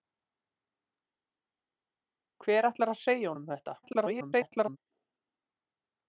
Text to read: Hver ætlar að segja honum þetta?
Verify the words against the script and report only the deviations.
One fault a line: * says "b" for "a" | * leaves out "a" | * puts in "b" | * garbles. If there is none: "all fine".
* garbles